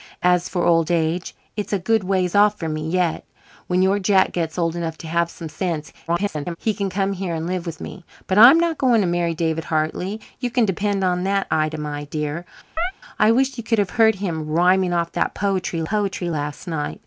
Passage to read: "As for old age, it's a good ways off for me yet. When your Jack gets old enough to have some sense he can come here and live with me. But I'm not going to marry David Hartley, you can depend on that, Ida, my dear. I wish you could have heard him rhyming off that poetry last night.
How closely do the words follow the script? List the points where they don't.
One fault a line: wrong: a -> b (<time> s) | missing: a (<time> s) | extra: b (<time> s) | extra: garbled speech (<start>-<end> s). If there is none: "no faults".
extra: garbled speech (6.1-6.6 s)
extra: poetry (15.8 s)